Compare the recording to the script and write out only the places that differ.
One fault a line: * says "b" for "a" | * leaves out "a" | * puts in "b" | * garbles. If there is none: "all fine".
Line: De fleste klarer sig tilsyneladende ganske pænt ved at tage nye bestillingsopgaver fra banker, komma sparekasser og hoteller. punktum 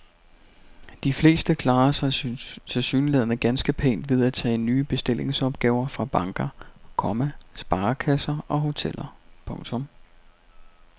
all fine